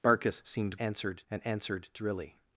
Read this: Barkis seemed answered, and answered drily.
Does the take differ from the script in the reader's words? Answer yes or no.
no